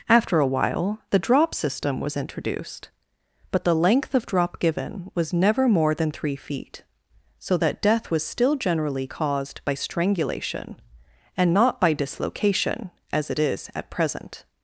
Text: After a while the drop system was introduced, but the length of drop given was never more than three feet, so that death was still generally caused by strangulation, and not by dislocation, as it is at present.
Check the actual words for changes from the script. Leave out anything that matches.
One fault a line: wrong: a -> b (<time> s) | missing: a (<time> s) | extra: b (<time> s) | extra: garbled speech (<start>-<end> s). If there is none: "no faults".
no faults